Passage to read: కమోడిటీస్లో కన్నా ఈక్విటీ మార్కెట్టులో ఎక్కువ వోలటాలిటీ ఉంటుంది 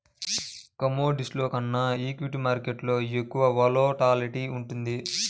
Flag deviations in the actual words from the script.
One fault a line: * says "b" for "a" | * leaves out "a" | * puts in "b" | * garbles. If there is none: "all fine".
all fine